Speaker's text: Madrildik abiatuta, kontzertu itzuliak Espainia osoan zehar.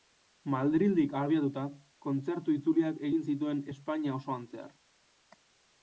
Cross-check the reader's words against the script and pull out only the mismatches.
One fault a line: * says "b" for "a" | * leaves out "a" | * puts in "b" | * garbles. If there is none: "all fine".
* puts in "egin zituen"